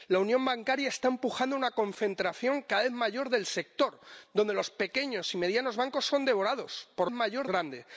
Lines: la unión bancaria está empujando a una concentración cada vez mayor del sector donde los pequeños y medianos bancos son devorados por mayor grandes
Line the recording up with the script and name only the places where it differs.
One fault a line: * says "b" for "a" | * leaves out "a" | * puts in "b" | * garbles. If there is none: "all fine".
all fine